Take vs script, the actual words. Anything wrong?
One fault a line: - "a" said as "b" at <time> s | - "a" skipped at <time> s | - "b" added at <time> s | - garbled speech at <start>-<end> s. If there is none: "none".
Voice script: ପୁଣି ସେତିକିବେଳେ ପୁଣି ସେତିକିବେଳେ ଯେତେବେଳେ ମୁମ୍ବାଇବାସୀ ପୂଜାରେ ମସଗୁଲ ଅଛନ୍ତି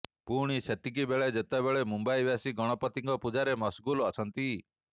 - "ପୁଣି ସେତିକିବେଳେ" skipped at 1.3 s
- "ଗଣପତିଙ୍କ" added at 2.5 s